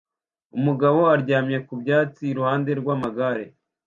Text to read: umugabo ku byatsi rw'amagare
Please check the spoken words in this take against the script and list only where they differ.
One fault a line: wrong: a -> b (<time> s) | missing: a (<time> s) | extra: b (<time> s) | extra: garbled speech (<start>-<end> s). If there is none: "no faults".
extra: aryamye (1.1 s)
extra: iruhande (2.3 s)